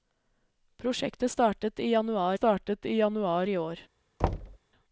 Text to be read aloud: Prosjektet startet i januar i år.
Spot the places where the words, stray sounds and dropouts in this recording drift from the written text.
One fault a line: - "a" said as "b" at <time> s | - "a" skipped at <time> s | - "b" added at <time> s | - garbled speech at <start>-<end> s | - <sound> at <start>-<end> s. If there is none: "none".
- "startet i januar" added at 2.3 s
- thud at 4.2-4.6 s